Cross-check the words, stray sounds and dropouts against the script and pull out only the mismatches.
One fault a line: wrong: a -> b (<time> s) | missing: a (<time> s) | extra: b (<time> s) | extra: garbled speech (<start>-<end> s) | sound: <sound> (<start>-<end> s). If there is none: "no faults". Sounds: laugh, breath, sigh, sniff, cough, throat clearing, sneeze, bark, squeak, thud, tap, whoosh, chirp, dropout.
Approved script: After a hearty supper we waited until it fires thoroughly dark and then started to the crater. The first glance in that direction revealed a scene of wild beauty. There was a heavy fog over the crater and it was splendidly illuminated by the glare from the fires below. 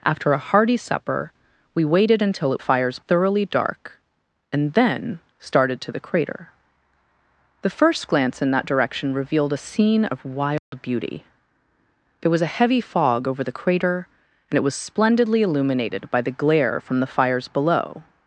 sound: dropout (10.6-10.7 s)